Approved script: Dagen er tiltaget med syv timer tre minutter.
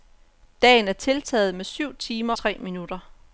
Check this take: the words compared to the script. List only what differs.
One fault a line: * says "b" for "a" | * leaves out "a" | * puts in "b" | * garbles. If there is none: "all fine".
all fine